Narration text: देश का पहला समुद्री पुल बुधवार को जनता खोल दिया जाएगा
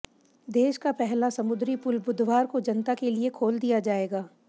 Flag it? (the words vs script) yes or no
yes